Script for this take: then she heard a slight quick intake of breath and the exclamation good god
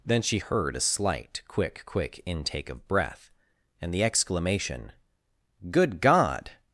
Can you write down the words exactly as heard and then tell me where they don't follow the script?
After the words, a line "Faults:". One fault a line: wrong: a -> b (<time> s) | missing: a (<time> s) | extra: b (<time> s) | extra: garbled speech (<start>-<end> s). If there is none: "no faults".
then she heard a slight quick quick intake of breath and the exclamation good god
Faults:
extra: quick (1.9 s)